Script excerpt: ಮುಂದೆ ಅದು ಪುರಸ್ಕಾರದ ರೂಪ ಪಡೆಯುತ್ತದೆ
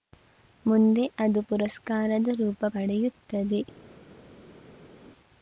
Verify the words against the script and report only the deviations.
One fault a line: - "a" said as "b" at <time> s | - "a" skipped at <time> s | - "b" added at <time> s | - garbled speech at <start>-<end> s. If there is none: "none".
none